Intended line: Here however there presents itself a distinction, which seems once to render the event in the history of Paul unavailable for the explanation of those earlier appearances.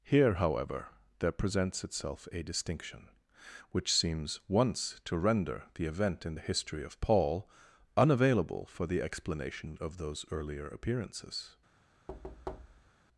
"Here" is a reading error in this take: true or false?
false